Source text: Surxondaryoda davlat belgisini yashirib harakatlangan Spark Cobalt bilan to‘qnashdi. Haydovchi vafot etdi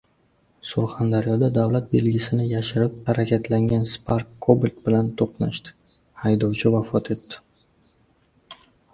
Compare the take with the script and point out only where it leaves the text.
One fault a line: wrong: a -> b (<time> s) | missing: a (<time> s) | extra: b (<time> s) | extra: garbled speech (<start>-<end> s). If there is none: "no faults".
no faults